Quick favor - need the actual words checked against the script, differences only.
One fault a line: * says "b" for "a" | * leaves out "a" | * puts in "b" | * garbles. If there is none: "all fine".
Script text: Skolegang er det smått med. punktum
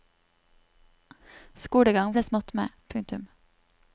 all fine